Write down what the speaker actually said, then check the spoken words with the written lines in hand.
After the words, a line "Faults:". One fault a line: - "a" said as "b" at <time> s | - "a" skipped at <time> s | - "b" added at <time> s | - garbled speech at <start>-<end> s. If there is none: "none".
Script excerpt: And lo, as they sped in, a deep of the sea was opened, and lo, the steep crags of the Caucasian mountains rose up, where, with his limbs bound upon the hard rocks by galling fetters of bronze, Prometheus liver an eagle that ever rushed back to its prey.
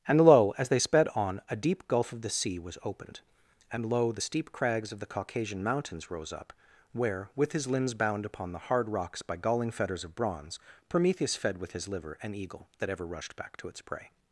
And lo, as they sped on, a deep gulf of the sea was opened, and lo, the steep crags of the Caucasian mountains rose up, where, with his limbs bound upon the hard rocks by galling fetters of bronze, Prometheus fed with his liver an eagle that ever rushed back to its prey.
Faults:
- "in" said as "on" at 1.1 s
- "gulf" added at 1.9 s
- "fed with his" added at 11.4 s